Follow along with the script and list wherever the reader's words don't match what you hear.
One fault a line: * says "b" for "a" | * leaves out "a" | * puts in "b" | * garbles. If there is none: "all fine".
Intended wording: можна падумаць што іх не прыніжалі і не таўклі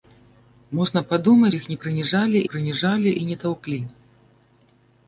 * leaves out "што"
* puts in "прыніжалі"